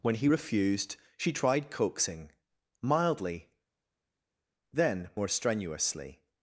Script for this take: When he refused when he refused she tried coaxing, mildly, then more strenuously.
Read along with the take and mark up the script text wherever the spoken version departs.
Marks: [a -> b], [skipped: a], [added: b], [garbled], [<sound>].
When he refused [skipped: when he refused] she tried coaxing, mildly, then more strenuously.